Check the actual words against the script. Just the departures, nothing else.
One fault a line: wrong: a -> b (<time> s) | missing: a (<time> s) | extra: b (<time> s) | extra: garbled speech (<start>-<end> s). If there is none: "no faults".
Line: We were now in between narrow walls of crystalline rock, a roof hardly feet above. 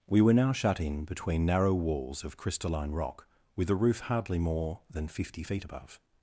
extra: shut (0.5 s)
extra: with (3.5 s)
extra: more than fifty (4.4 s)